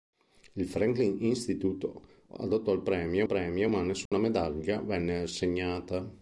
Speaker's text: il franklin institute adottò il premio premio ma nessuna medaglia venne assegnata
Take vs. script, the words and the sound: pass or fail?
fail